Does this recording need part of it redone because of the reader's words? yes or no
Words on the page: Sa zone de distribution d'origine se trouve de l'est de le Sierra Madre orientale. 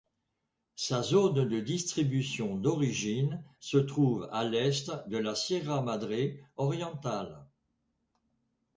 yes